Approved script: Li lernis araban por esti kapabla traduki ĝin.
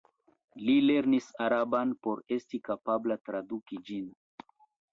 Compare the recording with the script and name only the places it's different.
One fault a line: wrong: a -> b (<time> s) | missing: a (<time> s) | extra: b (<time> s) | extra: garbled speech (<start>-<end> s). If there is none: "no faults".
no faults